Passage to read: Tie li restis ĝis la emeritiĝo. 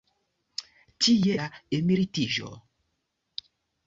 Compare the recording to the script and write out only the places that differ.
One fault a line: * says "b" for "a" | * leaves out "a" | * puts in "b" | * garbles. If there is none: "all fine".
* leaves out "li restis ĝis"